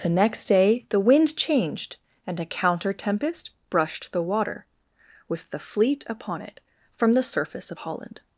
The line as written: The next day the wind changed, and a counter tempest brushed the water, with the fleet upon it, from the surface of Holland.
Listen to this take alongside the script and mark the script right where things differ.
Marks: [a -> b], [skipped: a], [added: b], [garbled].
The next day the wind changed, and a counter tempest brushed the water, with the fleet upon it, from the surface of Holland.